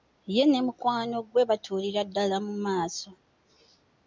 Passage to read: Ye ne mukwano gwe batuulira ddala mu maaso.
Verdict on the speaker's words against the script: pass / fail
pass